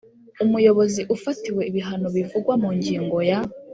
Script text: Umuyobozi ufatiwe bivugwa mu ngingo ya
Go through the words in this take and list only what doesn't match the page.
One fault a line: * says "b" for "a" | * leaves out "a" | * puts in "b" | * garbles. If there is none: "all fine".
* puts in "ibihano"